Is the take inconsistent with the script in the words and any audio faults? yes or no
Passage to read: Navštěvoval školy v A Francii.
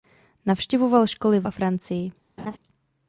yes